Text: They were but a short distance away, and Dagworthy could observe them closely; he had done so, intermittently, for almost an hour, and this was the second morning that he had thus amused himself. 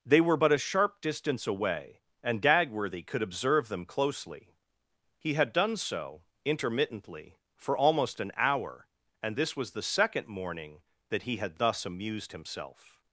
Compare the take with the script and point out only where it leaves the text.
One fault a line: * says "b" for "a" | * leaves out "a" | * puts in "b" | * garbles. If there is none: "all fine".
* says "sharp" for "short"